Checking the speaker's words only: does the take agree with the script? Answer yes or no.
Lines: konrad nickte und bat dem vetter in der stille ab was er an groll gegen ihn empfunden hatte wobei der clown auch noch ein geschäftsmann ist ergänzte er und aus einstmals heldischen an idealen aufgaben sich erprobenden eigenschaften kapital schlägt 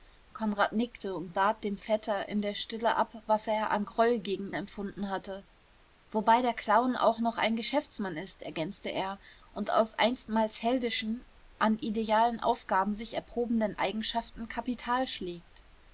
no